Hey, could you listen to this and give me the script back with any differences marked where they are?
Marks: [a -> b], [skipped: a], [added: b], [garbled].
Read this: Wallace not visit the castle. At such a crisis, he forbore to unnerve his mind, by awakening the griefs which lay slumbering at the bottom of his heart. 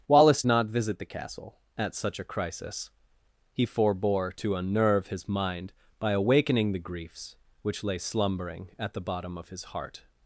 Wallace not visit the castle. At such a crisis, he forbore to unnerve his mind, by awakening the griefs which lay slumbering at the bottom of his heart.